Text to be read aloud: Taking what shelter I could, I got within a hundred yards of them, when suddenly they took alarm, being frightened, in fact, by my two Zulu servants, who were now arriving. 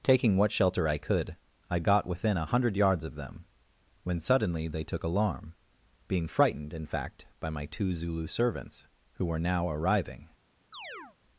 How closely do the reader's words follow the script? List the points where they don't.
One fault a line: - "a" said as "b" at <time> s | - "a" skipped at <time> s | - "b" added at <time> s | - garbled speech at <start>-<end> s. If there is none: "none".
none